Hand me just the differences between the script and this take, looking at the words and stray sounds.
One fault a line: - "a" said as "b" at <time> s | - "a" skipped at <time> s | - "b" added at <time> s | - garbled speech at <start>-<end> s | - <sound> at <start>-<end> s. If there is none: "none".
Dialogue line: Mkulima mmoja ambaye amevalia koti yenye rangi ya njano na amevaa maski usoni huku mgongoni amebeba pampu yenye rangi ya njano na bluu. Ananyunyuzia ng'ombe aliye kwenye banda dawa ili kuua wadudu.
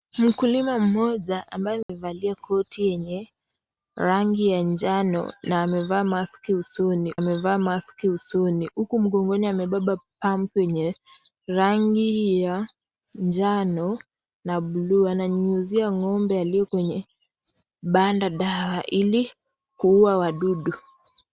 - dropout at 1.8-1.9 s
- "amevaa maski usoni" added at 7.1 s